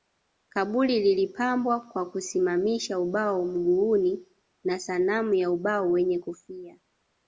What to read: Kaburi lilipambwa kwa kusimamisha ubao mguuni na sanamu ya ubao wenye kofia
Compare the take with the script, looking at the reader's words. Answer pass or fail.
pass